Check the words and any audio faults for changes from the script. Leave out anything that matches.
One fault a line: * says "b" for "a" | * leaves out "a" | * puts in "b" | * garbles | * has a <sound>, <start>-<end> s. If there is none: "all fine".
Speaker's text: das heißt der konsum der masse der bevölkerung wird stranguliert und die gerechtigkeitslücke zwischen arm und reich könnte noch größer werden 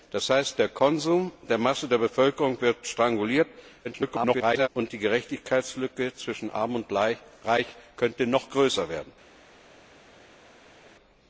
* garbles